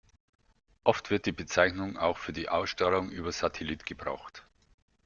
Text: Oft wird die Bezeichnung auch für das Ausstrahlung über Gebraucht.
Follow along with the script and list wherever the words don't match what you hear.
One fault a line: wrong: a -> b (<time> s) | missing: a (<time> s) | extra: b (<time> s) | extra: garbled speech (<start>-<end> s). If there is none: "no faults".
wrong: das -> die (2.3 s)
extra: Satellit (3.3 s)